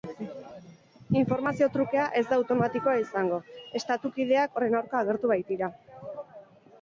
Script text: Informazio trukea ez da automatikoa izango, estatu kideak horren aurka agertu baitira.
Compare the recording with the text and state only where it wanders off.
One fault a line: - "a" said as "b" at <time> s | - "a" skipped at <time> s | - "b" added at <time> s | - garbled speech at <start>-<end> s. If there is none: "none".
none